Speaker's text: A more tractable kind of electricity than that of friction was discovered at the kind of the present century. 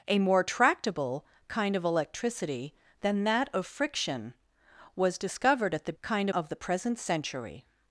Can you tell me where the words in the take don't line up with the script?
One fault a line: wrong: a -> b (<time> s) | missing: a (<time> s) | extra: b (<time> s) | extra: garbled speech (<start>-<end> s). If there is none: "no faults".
no faults